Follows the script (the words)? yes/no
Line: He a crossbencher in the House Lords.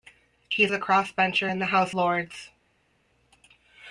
yes